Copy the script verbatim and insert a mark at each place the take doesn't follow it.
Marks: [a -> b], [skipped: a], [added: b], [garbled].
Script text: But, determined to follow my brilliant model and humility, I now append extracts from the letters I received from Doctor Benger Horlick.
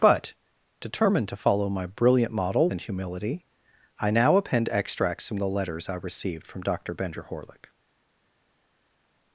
But, determined to follow my brilliant model and humility, I now append extracts from the letters I received from Doctor Benger Horlick.